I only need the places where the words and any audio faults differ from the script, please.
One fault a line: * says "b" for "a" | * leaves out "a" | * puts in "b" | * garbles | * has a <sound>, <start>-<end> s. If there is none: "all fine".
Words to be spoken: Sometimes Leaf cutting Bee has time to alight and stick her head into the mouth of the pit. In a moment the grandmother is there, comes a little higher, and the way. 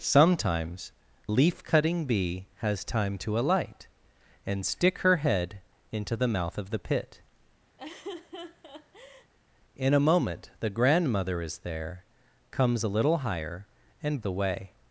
* has a laugh, 7.8-9.3 s